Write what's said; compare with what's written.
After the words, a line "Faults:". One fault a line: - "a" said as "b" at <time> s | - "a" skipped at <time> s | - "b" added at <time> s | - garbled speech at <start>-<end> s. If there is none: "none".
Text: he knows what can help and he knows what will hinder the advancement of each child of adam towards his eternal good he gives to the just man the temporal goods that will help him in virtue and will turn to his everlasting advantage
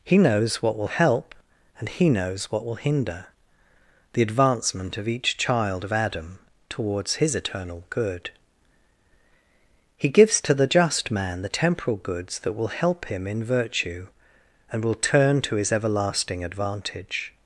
he knows what will help and he knows what will hinder the advancement of each child of adam towards his eternal good he gives to the just man the temporal goods that will help him in virtue and will turn to his everlasting advantage
Faults:
- "can" said as "will" at 0.8 s